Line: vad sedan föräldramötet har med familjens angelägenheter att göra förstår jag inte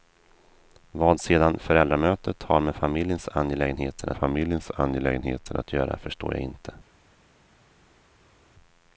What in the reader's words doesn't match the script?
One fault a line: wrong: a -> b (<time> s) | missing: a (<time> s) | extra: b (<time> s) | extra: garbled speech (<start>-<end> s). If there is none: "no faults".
extra: familjens angelägenheter (4.1 s)